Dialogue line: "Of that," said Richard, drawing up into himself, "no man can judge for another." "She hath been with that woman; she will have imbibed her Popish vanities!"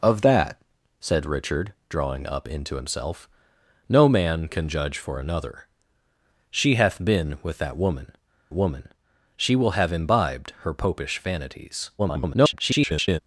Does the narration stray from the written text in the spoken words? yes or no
yes